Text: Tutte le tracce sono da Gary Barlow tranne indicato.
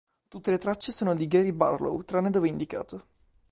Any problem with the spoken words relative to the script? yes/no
yes